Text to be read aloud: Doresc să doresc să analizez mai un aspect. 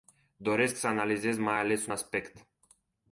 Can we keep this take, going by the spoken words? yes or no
no